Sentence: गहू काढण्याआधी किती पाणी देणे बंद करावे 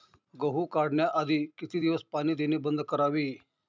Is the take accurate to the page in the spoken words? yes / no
no